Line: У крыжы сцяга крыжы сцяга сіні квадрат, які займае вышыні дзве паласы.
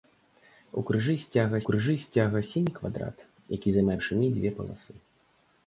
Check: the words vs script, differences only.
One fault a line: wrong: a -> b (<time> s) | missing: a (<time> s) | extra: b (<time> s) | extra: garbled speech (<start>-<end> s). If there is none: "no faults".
no faults